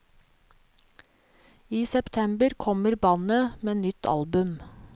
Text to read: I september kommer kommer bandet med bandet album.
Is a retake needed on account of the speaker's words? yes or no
yes